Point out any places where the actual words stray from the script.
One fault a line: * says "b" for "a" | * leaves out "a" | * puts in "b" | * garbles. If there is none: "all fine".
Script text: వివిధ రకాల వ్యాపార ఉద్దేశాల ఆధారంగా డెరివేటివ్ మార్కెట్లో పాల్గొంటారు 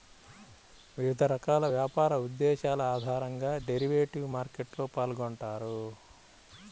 all fine